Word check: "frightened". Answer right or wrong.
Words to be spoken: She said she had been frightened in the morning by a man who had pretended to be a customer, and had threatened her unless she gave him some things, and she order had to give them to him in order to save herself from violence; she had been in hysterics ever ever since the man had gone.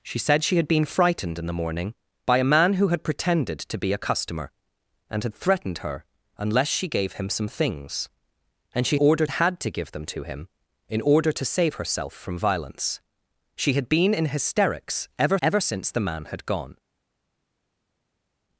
right